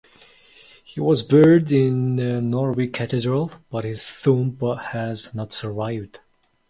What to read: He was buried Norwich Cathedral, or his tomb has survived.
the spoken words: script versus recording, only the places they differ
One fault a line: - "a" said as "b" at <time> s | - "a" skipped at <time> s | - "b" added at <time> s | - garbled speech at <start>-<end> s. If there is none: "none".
- "in" added at 1.7 s
- "or" said as "but" at 3.7 s
- "not" added at 5.3 s